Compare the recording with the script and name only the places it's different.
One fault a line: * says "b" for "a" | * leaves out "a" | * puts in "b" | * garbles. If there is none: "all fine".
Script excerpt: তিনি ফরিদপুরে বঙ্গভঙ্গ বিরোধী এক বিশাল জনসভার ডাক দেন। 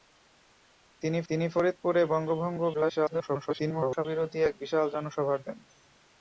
* puts in "তিনি"
* garbles
* leaves out "ডাক"